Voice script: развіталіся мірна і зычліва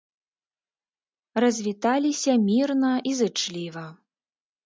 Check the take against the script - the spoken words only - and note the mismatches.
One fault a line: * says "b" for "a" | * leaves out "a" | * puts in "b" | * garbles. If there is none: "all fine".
all fine